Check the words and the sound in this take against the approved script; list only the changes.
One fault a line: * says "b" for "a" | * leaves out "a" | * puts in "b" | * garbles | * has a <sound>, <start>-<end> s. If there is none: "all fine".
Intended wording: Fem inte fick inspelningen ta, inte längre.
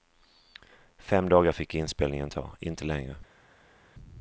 * says "dagar" for "inte"